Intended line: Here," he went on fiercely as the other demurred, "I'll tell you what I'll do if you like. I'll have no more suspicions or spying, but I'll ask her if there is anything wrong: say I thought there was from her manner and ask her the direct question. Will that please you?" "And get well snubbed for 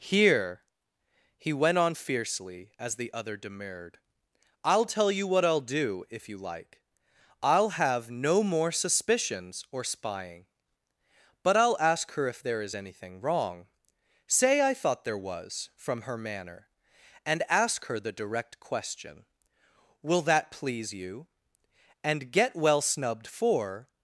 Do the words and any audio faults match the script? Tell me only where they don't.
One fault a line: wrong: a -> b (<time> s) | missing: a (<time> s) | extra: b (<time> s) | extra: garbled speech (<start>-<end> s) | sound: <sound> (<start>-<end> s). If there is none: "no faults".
no faults